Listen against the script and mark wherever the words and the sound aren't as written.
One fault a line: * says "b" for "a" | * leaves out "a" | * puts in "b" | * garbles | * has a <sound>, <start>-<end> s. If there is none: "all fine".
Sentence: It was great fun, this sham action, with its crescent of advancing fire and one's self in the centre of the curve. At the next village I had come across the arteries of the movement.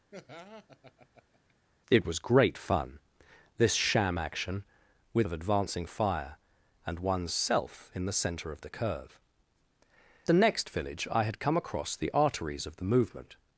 * has a laugh, 0.1-1.5 s
* leaves out "its crescent"
* leaves out "At"